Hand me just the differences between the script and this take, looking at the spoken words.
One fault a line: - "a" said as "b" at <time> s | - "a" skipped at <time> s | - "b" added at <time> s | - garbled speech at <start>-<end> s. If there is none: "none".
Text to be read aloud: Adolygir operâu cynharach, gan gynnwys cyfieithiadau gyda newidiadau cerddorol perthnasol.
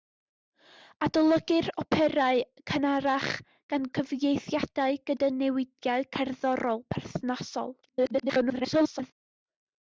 - "gynnwys" skipped at 3.9 s
- garbled speech at 7.8-9.1 s